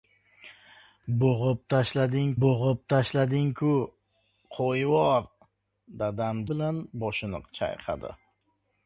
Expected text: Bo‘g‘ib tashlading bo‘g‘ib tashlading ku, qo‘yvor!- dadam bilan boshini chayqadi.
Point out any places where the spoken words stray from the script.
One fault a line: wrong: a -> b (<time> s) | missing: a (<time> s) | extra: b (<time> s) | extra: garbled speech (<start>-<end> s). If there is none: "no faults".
no faults